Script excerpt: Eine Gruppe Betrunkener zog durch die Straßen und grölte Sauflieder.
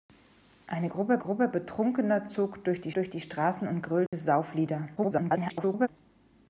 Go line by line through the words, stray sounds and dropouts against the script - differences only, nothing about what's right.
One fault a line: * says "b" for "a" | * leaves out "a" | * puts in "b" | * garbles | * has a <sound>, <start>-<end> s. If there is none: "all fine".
* puts in "Gruppe"
* puts in "durch die"
* has a dropout, 4.1-4.1 s
* garbles